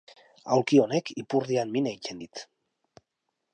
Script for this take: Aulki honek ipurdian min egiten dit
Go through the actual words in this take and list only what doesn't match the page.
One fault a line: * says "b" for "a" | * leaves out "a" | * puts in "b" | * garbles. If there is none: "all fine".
all fine